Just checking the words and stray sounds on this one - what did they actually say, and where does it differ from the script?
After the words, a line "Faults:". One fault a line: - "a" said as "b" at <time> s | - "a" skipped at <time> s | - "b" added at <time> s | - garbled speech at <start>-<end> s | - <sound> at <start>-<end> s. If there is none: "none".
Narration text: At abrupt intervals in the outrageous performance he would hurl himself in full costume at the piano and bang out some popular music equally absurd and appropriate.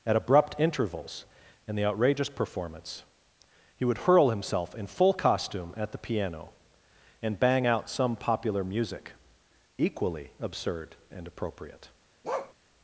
At abrupt intervals in the outrageous performance he would hurl himself in full costume at the piano and bang out some popular music equally absurd and appropriate.
Faults:
- bark at 12.2-12.5 s